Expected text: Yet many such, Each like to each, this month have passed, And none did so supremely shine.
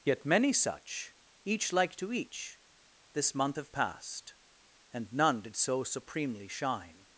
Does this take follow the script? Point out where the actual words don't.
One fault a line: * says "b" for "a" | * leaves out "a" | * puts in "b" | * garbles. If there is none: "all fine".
all fine